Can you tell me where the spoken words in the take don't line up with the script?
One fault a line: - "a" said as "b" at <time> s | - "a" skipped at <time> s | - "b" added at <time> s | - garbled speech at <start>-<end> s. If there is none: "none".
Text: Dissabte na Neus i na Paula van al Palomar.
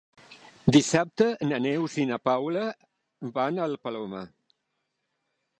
none